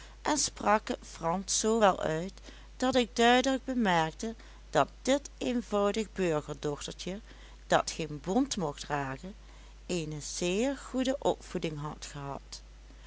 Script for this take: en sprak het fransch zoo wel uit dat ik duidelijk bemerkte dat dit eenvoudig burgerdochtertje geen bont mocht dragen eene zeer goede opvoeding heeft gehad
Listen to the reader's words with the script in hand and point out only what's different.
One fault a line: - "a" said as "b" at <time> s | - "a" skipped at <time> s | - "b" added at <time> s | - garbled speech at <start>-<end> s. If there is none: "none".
- "dat" added at 7.7 s
- "heeft" said as "had" at 11.8 s